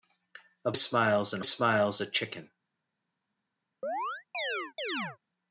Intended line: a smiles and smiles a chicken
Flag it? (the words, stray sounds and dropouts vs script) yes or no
yes